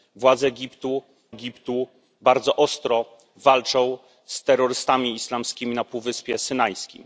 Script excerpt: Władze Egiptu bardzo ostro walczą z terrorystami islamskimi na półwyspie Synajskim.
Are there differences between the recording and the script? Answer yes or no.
yes